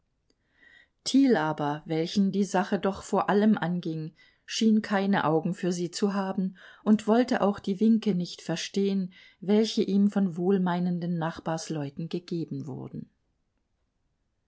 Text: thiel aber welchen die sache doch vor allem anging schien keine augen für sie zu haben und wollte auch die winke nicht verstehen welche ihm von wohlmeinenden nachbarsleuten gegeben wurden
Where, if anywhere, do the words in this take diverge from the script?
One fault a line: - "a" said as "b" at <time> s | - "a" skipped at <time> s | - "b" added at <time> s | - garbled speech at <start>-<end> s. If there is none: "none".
none